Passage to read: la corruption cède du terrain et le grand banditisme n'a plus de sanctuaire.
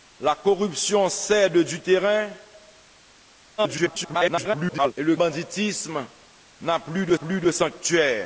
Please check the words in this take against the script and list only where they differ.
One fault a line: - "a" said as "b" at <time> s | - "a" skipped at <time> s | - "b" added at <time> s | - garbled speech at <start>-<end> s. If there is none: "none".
- garbled speech at 3.6-4.9 s
- "grand" skipped at 5.2 s
- "plus de" added at 7.1 s